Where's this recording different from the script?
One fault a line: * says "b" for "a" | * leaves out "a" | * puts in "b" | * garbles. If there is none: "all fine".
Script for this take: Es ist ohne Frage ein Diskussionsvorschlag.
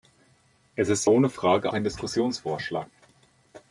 all fine